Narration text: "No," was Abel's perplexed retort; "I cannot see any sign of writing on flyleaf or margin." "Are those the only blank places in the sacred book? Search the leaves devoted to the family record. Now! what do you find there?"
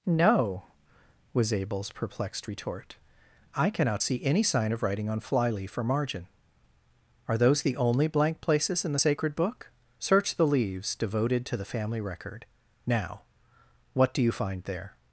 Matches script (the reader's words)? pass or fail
pass